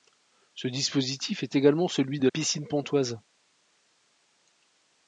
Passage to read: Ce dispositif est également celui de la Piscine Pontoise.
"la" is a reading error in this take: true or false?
true